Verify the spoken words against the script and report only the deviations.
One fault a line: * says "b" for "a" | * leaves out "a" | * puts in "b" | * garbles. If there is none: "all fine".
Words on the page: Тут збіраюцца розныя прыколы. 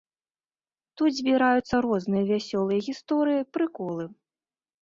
* puts in "вясёлыя гісторыі"